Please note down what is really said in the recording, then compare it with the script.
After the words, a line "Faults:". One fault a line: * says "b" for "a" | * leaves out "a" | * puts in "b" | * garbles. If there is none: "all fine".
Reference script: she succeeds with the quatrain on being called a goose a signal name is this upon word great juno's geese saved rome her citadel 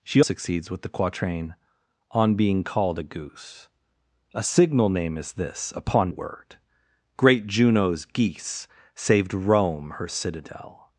she succeeds with the quatrain on being called a goose a signal name is this upon word great juno's geese saved rome her citadel
Faults:
all fine